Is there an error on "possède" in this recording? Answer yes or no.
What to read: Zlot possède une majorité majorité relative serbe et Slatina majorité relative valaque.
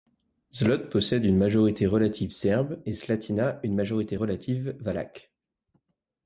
no